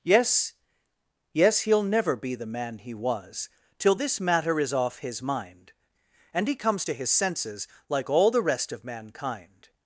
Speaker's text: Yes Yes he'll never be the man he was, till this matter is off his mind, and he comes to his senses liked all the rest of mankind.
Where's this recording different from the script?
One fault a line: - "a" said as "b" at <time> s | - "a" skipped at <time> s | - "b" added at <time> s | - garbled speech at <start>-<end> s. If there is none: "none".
- "liked" said as "like" at 7.9 s